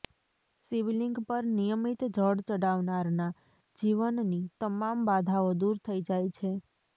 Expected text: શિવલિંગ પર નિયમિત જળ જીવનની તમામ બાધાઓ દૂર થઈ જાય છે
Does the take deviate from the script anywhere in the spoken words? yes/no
yes